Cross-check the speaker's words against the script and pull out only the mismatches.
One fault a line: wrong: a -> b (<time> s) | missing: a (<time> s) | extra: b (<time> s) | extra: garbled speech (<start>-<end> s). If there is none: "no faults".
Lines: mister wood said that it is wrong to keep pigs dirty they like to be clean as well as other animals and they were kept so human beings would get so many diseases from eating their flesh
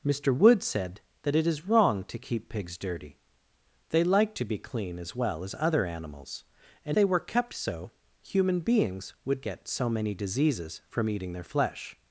no faults